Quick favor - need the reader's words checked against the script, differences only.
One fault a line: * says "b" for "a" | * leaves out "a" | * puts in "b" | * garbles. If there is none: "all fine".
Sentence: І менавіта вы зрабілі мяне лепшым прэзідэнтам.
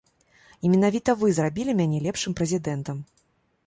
all fine